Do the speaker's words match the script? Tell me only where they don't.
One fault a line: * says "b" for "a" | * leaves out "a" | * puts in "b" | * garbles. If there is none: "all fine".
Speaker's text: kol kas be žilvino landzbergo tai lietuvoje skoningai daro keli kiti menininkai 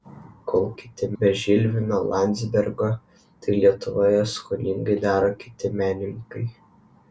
* says "kiti" for "kas"
* leaves out "keli"